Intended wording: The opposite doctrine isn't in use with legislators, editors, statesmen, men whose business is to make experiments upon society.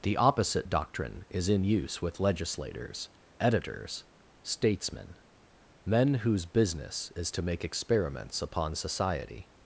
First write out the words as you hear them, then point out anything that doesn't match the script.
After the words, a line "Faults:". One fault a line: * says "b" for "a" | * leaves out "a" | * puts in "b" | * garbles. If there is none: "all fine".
The opposite doctrine is in use with legislators, editors, statesmen, men whose business is to make experiments upon society.
Faults:
* says "is" for "isn't"